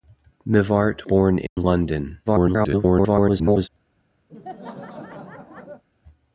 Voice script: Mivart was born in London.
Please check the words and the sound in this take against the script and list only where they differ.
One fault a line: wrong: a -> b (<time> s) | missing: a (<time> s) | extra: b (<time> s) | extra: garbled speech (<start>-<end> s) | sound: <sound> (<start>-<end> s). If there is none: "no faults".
missing: was (1.1 s)
sound: dropout (1.5-1.6 s)
extra: garbled speech (2.3-3.7 s)
sound: laugh (4.3-5.8 s)